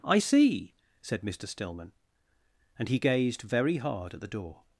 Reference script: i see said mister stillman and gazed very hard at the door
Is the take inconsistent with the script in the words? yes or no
yes